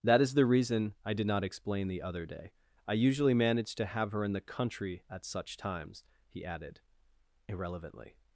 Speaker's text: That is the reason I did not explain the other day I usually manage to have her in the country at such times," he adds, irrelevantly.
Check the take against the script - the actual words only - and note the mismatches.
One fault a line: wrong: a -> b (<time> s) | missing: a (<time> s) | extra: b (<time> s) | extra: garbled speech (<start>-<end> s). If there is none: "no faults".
wrong: adds -> added (6.4 s)